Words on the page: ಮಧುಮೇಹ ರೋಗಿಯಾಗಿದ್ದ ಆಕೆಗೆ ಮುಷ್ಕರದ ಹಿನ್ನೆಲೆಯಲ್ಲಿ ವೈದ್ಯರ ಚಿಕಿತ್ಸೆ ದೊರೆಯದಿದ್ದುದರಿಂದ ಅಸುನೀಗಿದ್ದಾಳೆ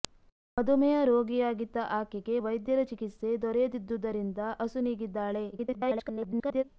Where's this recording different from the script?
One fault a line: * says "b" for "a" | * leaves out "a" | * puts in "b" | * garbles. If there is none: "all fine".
* leaves out "ಮುಷ್ಕರದ ಹಿನ್ನೆಲೆಯಲ್ಲಿ"
* garbles